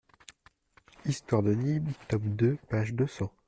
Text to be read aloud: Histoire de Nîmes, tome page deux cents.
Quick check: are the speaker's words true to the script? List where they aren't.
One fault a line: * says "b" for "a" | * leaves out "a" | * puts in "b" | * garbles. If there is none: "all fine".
* puts in "deux"